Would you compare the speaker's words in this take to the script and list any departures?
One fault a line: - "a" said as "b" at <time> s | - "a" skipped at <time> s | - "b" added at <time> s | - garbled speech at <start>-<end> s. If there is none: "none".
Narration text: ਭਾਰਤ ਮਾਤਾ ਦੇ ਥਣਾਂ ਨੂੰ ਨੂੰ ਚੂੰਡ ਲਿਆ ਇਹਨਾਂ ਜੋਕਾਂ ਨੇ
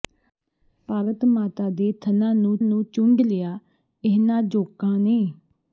none